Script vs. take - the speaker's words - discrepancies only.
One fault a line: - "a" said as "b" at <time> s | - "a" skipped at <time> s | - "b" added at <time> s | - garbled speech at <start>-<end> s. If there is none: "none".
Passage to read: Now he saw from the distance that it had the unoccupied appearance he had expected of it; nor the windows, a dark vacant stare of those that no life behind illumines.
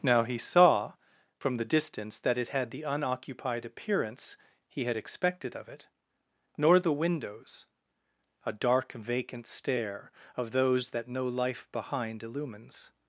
none